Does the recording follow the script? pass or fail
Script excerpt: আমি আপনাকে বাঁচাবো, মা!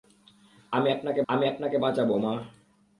fail